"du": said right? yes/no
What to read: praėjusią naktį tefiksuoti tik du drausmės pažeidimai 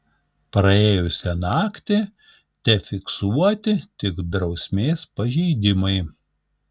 no